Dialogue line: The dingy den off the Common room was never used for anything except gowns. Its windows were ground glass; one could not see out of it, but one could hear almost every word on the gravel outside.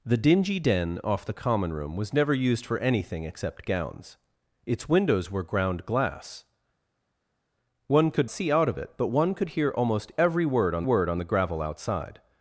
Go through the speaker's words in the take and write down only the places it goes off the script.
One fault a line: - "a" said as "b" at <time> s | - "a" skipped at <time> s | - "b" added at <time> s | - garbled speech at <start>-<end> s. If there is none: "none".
- "not" skipped at 8.3 s
- "word on" added at 10.8 s